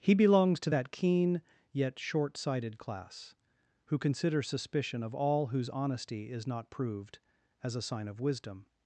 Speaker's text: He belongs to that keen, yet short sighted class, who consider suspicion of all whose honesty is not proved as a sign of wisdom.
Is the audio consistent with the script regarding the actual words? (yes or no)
yes